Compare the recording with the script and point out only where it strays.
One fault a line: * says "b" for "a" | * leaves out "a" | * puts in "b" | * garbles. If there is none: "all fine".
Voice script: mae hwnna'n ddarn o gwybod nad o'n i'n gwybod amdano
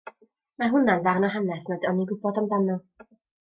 * says "hanes" for "gwybod"